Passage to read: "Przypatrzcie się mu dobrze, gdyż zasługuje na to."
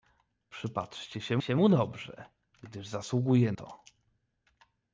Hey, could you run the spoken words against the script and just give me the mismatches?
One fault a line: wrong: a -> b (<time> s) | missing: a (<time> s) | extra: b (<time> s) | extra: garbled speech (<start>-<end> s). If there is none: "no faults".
extra: się (1.4 s)
missing: na (3.5 s)